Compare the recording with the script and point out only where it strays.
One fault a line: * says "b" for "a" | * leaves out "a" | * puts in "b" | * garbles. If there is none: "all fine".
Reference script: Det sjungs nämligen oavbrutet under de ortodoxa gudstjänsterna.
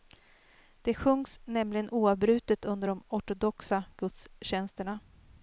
all fine